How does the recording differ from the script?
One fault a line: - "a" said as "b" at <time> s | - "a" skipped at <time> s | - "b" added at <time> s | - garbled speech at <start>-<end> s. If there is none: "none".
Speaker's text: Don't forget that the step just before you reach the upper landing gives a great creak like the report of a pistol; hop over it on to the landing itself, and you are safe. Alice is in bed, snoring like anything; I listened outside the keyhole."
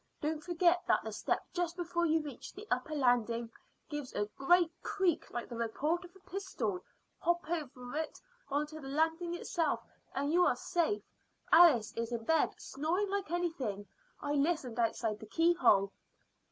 none